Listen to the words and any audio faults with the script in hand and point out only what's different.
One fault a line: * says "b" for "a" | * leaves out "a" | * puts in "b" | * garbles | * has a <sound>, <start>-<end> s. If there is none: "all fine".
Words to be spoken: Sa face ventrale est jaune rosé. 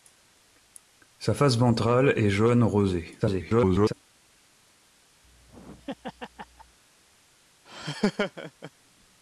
* garbles
* has a laugh, 5.2-6.8 s
* has a laugh, 7.7-8.7 s